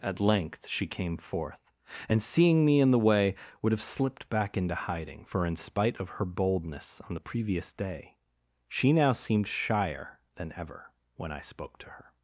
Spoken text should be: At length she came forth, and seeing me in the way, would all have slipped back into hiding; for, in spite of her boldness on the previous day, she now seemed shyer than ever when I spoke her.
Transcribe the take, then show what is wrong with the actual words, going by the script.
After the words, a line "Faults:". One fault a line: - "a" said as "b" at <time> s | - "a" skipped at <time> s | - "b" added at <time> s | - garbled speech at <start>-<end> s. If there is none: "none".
At length she came forth, and seeing me in the way, would have slipped back into hiding; for, in spite of her boldness on the previous day, she now seemed shyer than ever when I spoke to her.
Faults:
- "all" skipped at 3.7 s
- "to" added at 11.8 s